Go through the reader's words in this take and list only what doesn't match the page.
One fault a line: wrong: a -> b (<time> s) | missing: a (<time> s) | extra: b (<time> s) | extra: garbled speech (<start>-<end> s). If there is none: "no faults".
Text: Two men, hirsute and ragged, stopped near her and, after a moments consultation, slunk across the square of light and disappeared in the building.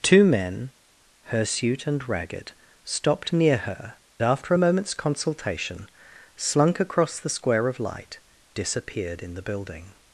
missing: and (4.0 s)
missing: and (8.2 s)